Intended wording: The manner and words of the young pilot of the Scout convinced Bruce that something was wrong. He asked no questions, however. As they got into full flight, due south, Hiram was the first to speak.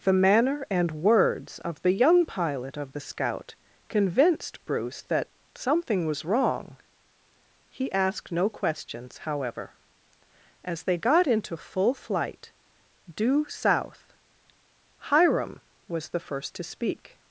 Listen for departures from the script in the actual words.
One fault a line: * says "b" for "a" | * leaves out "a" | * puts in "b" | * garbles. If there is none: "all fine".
all fine